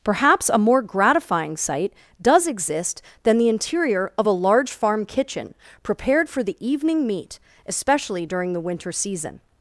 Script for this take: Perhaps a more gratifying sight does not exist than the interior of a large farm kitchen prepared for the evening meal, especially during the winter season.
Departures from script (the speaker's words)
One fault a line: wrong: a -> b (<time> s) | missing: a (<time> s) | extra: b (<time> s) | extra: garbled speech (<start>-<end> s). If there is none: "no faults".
missing: not (2.5 s)
wrong: meal -> meat (7.1 s)